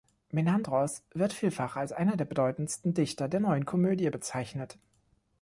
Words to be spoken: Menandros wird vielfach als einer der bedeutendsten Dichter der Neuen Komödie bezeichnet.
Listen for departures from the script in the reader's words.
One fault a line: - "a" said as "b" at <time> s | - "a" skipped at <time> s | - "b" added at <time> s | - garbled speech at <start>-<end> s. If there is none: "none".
none